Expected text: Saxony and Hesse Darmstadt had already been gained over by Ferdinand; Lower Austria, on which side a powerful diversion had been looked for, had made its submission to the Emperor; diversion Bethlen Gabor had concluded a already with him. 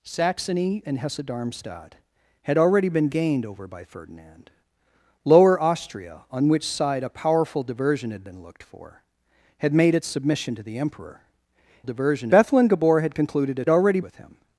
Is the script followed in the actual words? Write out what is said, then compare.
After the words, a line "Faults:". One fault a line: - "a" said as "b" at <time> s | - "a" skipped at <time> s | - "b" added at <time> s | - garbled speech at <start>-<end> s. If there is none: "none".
Saxony and Hesse Darmstadt had already been gained over by Ferdinand; Lower Austria, on which side a powerful diversion had been looked for, had made its submission to the Emperor; diversion Bethlen Gabor had concluded a already with him.
Faults:
none